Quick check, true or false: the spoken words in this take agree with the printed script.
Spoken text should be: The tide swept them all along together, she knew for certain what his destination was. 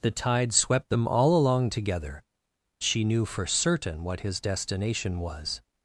true